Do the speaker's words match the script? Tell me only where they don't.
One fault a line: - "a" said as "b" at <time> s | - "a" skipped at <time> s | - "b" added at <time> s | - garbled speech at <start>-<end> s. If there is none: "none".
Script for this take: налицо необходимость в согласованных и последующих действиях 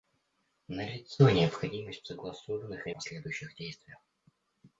none